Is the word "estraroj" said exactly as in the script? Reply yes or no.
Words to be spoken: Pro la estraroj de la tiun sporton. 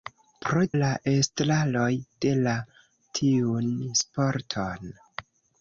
yes